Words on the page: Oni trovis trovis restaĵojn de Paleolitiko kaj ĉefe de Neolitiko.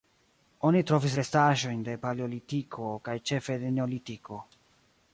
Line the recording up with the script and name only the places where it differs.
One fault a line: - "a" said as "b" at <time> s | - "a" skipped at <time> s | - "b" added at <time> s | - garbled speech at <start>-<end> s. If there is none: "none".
- "trovis" skipped at 1.2 s